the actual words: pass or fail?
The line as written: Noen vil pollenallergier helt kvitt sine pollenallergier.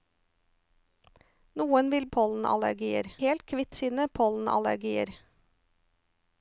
pass